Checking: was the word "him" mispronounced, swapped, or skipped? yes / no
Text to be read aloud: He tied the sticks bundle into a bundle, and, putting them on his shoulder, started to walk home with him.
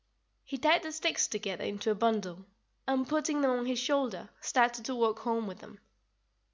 yes